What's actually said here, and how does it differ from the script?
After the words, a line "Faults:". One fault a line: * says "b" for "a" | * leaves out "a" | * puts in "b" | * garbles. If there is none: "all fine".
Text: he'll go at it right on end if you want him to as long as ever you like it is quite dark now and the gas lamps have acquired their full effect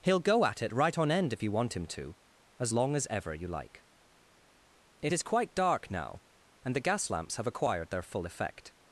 he'll go at it right on end if you want him to as long as ever you like it is quite dark now and the gas lamps have acquired their full effect
Faults:
all fine